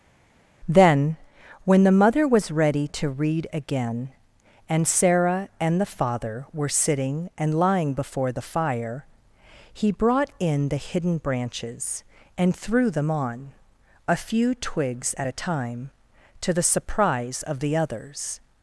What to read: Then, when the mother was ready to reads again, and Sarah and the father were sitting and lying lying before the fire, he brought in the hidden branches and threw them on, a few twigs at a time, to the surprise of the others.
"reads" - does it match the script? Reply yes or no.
no